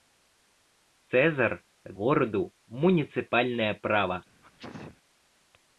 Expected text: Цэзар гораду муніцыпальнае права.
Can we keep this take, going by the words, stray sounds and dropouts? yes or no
no